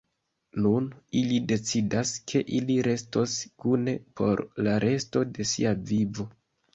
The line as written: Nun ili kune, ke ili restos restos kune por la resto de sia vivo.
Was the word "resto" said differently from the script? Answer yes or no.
no